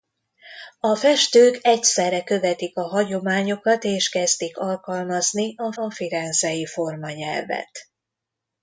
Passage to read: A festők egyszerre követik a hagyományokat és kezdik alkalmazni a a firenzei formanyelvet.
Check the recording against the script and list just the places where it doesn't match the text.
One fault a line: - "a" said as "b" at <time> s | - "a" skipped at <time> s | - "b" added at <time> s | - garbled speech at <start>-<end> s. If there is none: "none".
none